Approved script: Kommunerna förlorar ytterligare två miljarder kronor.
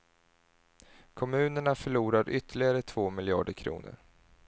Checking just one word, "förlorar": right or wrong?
right